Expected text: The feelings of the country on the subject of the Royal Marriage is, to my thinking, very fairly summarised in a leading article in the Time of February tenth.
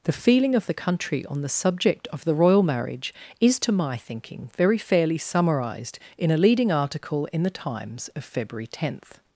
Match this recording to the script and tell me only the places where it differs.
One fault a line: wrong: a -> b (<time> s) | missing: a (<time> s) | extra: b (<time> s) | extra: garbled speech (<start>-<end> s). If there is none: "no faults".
wrong: feelings -> feeling (0.2 s)
wrong: Time -> Times (7.5 s)